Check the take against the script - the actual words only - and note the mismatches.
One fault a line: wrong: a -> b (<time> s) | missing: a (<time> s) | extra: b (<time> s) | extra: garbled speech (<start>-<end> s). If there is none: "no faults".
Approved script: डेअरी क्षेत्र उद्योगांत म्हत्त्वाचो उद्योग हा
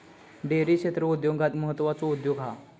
no faults